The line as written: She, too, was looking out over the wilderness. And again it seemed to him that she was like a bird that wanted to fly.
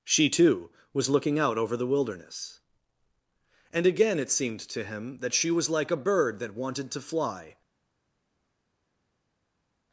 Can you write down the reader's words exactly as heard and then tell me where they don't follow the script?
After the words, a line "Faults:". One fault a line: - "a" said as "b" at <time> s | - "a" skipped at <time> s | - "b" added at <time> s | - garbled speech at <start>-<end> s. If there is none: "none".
She, too, was looking out over the wilderness. And again it seemed to him that she was like a bird that wanted to fly.
Faults:
none